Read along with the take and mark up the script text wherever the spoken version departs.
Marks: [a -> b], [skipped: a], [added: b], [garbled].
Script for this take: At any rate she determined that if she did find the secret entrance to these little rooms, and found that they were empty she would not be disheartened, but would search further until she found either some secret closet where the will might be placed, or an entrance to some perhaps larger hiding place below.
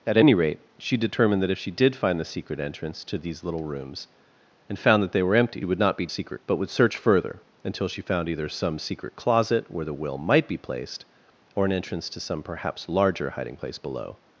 At any rate she determined that if she did find the secret entrance to these little rooms, and found that they were empty [skipped: she] would not be [disheartened, -> secret] but would search further until she found either some secret closet where the will might be placed, or an entrance to some perhaps larger hiding place below.